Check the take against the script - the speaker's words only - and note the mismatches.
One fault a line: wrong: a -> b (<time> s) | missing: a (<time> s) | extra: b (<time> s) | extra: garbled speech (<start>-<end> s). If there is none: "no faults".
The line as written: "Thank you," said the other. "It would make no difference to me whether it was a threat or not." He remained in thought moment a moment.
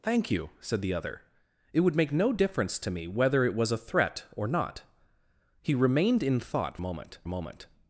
no faults